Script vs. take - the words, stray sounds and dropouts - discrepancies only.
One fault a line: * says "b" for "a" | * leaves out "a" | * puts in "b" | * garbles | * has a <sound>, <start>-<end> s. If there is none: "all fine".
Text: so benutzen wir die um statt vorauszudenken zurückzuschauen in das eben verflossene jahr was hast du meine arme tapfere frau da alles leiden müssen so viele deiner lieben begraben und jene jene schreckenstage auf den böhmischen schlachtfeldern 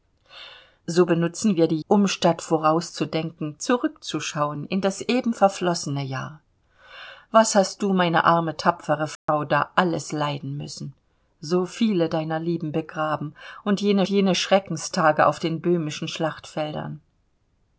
* has a dropout, 9.2-9.3 s